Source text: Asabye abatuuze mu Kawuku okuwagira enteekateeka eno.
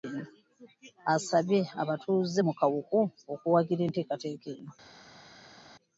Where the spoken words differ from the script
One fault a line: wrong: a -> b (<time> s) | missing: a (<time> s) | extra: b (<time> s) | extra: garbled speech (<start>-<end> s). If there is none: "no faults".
no faults